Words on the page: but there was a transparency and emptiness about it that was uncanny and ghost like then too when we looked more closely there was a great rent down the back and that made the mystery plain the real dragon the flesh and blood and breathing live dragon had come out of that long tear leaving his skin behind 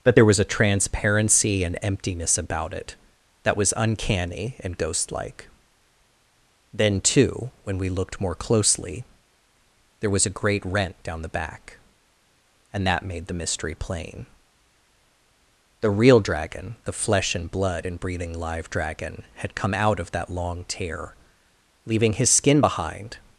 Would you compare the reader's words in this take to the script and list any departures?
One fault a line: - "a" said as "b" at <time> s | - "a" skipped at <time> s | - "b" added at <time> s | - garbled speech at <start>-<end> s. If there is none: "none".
none